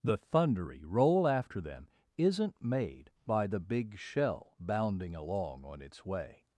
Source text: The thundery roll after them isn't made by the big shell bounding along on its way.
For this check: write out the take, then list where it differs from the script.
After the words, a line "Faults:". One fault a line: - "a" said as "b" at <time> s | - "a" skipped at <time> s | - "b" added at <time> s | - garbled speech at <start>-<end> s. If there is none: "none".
The thundery roll after them isn't made by the big shell bounding along on its way.
Faults:
none